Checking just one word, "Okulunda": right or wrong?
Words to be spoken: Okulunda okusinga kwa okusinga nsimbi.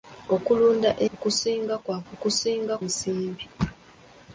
right